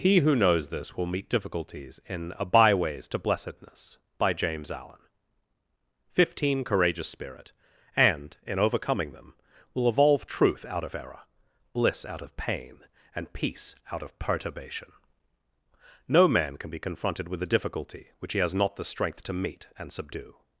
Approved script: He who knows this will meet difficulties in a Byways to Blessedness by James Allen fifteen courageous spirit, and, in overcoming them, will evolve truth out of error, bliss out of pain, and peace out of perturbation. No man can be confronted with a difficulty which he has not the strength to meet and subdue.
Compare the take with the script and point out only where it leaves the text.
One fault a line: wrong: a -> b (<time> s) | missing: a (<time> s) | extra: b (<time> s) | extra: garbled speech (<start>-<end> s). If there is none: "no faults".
no faults